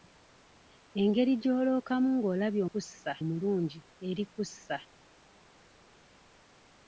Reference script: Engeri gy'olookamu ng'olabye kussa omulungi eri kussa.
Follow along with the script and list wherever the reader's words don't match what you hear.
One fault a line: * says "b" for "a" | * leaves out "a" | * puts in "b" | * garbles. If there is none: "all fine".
all fine